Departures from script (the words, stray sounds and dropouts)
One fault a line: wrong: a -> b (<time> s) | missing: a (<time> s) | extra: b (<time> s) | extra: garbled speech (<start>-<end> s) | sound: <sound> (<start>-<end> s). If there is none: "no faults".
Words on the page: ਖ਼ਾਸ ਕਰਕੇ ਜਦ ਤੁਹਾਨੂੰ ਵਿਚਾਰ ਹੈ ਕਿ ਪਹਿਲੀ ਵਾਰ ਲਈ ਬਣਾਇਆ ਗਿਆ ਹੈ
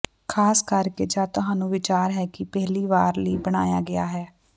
no faults